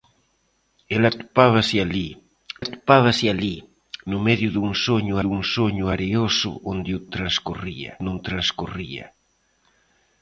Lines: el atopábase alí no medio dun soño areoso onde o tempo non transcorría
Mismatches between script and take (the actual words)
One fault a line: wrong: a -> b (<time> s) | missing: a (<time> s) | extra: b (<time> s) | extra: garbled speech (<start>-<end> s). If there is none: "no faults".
extra: atopábase alí (2.6 s)
extra: dun soño (5.2 s)
wrong: tempo -> transcorría (7.1 s)